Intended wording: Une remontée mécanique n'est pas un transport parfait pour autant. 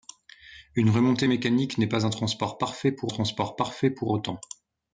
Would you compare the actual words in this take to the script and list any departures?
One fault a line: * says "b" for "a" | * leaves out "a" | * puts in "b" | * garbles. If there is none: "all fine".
* puts in "transport parfait pour"